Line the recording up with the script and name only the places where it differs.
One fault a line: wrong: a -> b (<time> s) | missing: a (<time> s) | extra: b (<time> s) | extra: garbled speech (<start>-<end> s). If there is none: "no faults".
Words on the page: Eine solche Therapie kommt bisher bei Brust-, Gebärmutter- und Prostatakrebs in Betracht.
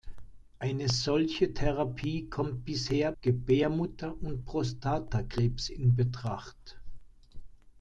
missing: bei Brust (3.1 s)